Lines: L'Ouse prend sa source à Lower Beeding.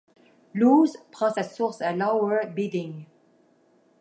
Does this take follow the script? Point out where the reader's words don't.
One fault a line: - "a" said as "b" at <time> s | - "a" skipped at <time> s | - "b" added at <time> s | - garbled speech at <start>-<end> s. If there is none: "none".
none